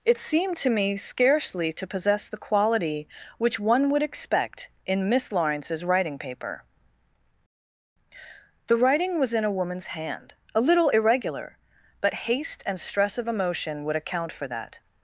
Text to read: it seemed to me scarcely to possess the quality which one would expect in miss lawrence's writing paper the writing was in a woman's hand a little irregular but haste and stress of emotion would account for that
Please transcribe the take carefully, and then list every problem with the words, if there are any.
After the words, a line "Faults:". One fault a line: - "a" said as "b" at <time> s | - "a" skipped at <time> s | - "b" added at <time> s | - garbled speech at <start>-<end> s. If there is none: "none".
it seemed to me scarcely to possess the quality which one would expect in miss lawrence's writing paper the writing was in a woman's hand a little irregular but haste and stress of emotion would account for that
Faults:
none